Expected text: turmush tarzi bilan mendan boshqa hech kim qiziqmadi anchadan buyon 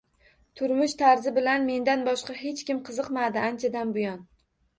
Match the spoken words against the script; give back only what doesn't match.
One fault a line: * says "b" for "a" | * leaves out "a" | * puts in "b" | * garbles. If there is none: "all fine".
all fine